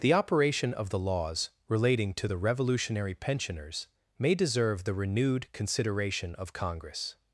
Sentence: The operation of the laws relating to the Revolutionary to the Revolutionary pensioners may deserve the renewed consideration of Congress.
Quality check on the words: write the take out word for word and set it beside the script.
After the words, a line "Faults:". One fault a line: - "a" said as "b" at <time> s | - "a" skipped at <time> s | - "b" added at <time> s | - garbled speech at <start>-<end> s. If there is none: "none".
The operation of the laws relating to the Revolutionary pensioners may deserve the renewed consideration of Congress.
Faults:
- "to the Revolutionary" skipped at 3.1 s